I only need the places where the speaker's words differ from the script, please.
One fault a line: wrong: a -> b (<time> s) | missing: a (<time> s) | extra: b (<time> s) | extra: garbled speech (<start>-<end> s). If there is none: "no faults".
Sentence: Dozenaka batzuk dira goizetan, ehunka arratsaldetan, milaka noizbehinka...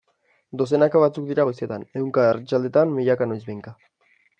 no faults